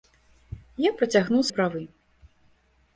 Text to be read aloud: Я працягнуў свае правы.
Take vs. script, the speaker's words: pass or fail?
fail